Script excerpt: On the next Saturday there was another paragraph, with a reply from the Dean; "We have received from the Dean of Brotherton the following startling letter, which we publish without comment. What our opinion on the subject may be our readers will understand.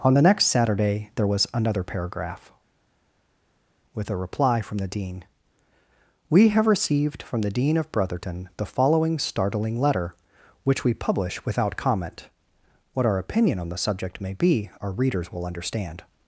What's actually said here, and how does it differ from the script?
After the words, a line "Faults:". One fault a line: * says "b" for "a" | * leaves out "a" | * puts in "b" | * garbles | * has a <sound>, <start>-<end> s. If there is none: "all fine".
On the next Saturday there was another paragraph, with a reply from the Dean; "We have received from the Dean of Brotherton the following startling letter, which we publish without comment. What our opinion on the subject may be our readers will understand.
Faults:
all fine